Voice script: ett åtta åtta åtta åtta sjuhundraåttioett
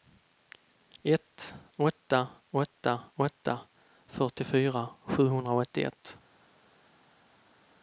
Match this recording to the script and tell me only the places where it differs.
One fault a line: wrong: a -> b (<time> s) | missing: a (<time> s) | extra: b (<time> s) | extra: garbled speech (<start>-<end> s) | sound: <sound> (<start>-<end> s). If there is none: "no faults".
wrong: åtta -> fyrtiofyra (4.1 s)